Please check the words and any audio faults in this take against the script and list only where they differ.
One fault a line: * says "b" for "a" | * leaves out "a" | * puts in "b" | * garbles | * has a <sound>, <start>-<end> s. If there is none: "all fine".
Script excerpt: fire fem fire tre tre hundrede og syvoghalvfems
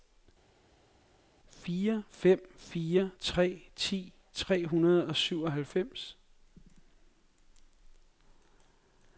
* puts in "ti"